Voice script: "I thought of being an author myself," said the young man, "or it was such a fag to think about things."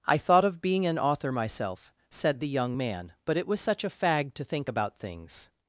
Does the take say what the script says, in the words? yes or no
no